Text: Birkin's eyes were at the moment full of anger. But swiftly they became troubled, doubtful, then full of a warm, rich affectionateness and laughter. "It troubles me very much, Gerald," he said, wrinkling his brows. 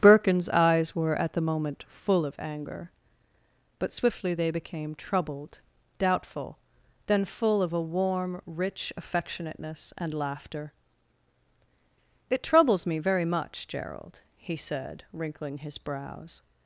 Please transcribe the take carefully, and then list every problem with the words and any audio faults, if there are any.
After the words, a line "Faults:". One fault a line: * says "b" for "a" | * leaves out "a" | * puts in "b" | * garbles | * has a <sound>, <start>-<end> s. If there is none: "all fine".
Birkin's eyes were at the moment full of anger. But swiftly they became troubled, doubtful, then full of a warm, rich affectionateness and laughter. "It troubles me very much, Gerald," he said, wrinkling his brows.
Faults:
all fine